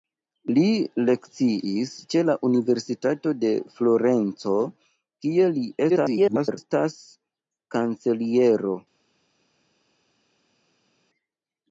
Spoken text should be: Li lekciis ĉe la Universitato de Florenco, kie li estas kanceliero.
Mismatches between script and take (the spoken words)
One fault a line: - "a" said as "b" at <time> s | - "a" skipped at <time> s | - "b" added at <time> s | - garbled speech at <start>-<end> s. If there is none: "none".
- garbled speech at 5.9-6.6 s